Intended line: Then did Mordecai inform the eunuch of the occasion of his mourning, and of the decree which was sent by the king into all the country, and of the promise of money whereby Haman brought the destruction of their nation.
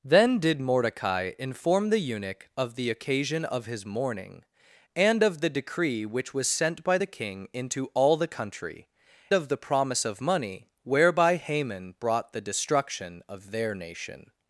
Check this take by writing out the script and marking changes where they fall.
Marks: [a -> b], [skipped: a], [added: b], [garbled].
Then did Mordecai inform the eunuch of the occasion of his mourning, and of the decree which was sent by the king into all the country, [skipped: and] of the promise of money whereby Haman brought the destruction of their nation.